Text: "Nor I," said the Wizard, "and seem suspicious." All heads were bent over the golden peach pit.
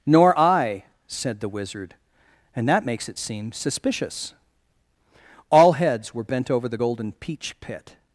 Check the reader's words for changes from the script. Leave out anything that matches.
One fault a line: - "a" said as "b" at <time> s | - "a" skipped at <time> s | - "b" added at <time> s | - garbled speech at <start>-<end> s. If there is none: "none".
- "that makes it" added at 2.7 s